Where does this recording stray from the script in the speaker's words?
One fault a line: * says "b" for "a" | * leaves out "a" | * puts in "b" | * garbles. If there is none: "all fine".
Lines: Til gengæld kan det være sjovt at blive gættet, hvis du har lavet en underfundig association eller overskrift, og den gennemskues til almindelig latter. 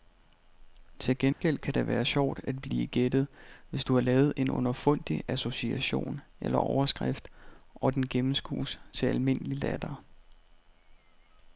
all fine